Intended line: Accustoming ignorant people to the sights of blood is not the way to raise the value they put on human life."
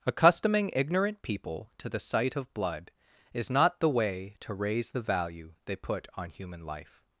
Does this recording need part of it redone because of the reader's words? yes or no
yes